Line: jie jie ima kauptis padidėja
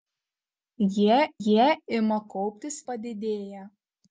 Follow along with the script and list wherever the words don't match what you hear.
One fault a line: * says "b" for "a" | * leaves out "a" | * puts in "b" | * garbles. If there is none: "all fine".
all fine